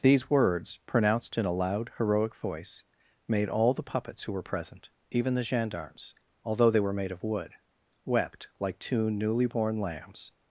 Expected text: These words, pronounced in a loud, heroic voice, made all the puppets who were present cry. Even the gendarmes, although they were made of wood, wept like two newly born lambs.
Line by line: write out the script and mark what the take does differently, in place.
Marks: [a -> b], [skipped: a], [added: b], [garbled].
These words, pronounced in a loud, heroic voice, made all the puppets who were present [skipped: cry.] Even the gendarmes, although they were made of wood, wept like two newly born lambs.